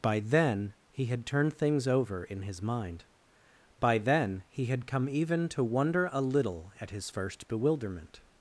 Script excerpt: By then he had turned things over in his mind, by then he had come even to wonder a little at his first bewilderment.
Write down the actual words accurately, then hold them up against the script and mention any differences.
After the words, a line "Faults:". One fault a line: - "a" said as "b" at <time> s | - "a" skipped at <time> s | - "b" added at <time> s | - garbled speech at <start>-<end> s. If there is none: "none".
By then he had turned things over in his mind, by then he had come even to wonder a little at his first bewilderment.
Faults:
none